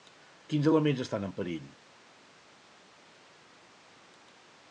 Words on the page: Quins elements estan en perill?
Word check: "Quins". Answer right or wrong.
right